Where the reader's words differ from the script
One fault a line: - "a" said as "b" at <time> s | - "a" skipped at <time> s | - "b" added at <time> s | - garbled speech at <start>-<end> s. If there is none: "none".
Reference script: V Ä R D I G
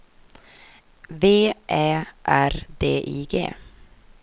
none